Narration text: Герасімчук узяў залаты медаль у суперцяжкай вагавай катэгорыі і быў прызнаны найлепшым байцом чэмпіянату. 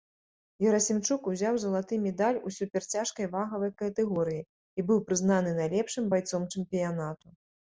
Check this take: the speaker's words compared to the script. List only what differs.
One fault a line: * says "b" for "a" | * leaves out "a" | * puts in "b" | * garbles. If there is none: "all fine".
all fine